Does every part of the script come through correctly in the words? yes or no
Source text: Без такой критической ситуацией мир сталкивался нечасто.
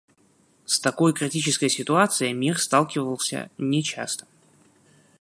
no